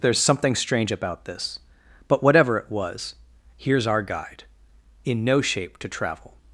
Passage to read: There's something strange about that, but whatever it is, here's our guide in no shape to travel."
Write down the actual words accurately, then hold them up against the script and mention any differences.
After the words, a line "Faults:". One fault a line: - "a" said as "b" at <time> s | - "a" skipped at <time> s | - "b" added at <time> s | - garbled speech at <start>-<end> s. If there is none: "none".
There's something strange about this, but whatever it was, here's our guide in no shape to travel."
Faults:
- "that" said as "this" at 1.2 s
- "is" said as "was" at 2.7 s